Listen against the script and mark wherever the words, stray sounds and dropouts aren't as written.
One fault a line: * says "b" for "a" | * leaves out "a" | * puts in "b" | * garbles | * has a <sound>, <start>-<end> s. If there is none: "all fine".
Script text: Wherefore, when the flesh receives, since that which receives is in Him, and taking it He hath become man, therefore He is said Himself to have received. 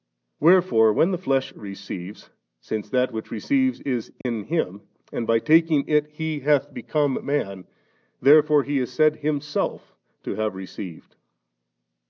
* has a dropout, 4.2-4.3 s
* puts in "by"